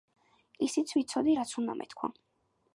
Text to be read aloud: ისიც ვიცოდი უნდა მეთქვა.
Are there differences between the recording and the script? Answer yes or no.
yes